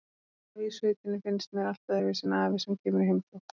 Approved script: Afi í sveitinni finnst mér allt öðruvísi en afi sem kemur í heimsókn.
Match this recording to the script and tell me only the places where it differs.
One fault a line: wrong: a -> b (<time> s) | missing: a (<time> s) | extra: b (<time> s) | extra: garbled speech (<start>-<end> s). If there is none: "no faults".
no faults